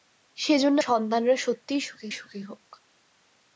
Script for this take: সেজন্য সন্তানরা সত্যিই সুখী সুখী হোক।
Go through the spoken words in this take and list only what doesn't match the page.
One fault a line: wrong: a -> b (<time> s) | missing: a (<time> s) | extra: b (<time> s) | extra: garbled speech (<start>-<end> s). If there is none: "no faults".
no faults